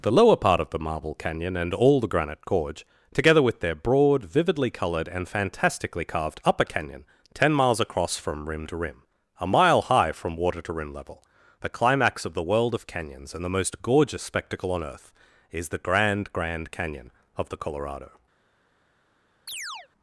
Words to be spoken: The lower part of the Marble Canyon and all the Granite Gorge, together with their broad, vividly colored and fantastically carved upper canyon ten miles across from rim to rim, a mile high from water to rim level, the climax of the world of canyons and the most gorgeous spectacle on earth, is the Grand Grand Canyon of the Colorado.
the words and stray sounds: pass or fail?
fail